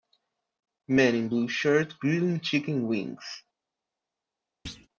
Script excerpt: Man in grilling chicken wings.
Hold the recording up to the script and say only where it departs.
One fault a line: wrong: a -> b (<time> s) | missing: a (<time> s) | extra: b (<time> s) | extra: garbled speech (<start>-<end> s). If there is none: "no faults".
extra: blue shirt (1.3 s)